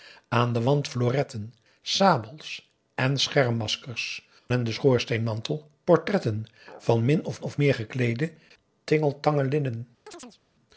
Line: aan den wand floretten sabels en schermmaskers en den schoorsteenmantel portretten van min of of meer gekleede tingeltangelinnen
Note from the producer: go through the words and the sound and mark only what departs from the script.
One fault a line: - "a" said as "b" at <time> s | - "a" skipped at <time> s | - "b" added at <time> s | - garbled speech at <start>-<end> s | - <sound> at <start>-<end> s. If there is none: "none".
- chirp at 10.1-10.4 s